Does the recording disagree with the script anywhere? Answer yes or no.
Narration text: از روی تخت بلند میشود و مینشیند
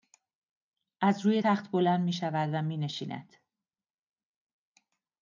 no